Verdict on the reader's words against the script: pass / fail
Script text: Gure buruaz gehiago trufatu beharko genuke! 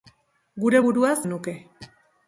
fail